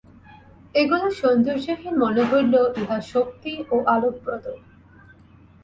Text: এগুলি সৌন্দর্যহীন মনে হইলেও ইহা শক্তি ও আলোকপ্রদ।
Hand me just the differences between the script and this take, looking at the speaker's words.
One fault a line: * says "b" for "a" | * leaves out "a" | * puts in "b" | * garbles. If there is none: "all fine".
all fine